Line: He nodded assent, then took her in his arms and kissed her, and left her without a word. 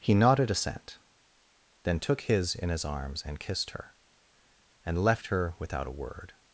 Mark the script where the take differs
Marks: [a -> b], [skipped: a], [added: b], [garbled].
He nodded assent, then took [her -> his] in his arms and kissed her, and left her without a word.